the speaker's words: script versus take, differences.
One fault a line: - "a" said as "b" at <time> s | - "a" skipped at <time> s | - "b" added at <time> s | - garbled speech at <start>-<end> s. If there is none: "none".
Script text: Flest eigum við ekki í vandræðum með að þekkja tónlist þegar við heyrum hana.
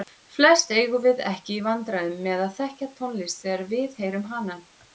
none